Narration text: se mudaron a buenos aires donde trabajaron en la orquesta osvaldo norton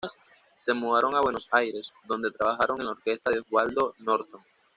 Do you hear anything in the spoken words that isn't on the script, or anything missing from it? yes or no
yes